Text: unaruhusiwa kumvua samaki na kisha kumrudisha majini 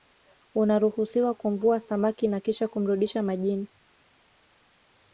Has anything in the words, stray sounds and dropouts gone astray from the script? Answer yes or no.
no